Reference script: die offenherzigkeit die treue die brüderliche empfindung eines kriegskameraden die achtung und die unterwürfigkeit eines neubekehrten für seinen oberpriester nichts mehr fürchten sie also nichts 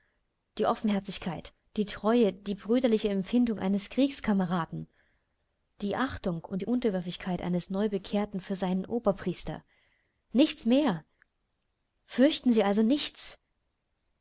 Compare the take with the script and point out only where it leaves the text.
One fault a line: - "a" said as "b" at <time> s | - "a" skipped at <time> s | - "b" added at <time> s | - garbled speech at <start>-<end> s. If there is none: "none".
none